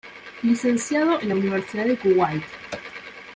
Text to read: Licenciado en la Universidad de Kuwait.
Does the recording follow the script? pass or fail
pass